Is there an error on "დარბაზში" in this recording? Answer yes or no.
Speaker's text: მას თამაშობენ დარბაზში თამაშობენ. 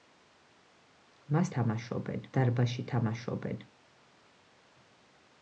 no